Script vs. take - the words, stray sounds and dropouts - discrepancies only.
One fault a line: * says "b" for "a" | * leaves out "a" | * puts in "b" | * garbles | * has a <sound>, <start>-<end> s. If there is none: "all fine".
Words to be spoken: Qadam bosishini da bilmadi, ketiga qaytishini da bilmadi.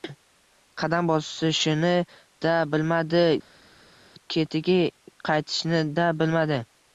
all fine